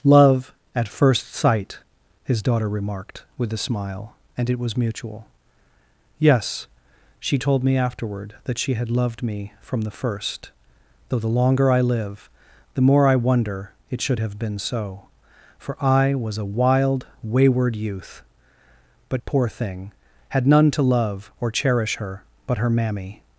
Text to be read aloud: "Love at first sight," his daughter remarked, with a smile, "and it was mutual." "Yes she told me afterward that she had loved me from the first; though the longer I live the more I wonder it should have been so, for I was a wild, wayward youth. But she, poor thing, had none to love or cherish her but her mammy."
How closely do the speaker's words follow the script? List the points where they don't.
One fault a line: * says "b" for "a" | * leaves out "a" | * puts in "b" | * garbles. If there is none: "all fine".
* leaves out "she"